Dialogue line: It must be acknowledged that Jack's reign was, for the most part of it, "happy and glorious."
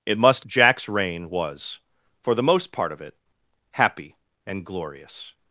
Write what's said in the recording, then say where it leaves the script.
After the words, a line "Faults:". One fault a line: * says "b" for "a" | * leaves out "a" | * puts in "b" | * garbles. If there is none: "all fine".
It must Jack's reign was, for the most part of it, "happy and glorious."
Faults:
* leaves out "be acknowledged that"